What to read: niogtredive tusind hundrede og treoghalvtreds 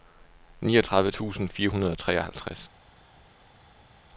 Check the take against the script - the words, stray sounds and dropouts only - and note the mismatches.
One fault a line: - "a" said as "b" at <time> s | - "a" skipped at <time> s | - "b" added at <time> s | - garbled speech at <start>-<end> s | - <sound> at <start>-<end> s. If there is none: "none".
- "fire" added at 1.5 s